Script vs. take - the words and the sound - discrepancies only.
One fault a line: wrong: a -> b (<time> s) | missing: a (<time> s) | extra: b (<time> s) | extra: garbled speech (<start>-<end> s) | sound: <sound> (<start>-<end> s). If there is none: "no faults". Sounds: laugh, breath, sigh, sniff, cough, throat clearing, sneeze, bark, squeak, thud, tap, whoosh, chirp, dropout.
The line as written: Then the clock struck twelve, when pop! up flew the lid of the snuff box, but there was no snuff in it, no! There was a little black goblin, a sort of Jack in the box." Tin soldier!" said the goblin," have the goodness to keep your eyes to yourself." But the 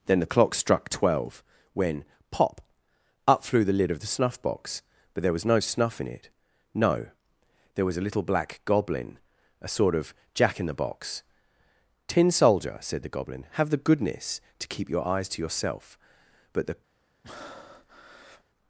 sound: breath (17.2-18.4 s)